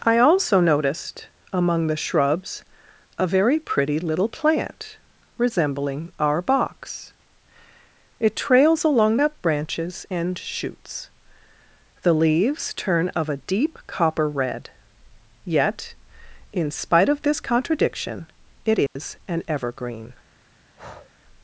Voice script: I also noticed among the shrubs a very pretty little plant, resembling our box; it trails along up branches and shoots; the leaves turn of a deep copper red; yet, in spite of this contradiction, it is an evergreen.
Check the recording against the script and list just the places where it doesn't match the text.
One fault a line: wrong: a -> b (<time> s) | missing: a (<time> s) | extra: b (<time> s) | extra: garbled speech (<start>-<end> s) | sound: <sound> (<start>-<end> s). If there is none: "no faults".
sound: dropout (18.9-19.0 s)
sound: breath (20.8-21.1 s)